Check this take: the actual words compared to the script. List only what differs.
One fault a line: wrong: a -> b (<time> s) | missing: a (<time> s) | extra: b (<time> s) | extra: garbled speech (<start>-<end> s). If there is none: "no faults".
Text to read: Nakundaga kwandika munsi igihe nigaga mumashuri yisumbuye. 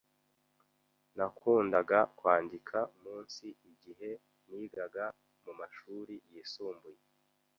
no faults